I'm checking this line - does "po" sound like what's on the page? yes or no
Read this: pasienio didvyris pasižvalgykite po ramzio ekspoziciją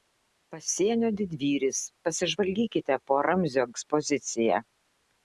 yes